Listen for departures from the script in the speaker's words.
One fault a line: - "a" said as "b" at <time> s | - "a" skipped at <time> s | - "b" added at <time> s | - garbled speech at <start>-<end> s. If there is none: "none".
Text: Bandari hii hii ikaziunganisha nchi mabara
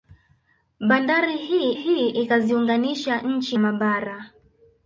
none